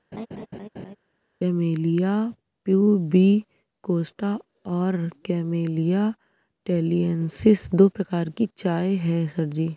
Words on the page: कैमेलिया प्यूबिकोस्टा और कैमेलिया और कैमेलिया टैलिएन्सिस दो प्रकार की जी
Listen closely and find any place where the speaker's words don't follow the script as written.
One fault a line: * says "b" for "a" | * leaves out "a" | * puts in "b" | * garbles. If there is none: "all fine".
* leaves out "और कैमेलिया"
* puts in "चाय है सर"